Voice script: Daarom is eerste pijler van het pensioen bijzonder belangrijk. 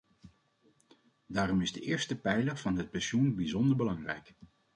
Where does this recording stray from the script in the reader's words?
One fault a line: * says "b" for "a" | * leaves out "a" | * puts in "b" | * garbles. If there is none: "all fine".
* puts in "de"